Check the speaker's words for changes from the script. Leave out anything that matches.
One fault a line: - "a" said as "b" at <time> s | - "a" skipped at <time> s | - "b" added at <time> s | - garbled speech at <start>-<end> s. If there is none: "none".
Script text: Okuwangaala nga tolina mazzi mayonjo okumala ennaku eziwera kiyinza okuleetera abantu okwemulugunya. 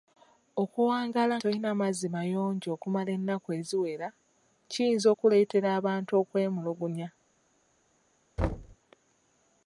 - "nga" skipped at 1.4 s